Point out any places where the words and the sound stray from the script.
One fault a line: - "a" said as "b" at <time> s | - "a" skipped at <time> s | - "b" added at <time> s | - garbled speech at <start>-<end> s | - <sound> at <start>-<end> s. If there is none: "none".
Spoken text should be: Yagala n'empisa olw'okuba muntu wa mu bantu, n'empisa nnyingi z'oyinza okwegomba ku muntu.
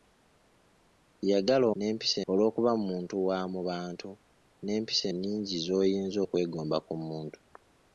none